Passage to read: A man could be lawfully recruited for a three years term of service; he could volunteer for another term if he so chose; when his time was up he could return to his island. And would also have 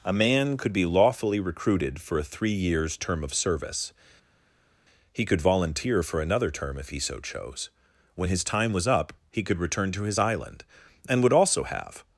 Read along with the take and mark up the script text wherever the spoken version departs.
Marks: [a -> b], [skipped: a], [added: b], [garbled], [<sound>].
A man could be lawfully recruited for a three years term of service; he could volunteer for another term if he so chose; when his time was up he could return to his island. And would also have